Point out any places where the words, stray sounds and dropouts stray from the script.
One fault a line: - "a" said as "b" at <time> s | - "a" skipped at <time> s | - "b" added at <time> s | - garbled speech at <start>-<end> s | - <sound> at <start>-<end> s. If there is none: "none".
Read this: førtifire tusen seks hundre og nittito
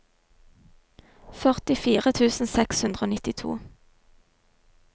none